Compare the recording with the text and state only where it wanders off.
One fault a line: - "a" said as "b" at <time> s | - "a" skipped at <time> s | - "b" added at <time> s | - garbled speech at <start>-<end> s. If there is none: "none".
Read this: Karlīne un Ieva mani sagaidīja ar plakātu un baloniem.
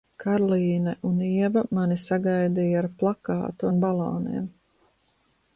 none